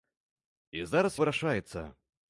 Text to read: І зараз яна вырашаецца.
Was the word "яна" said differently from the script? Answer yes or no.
yes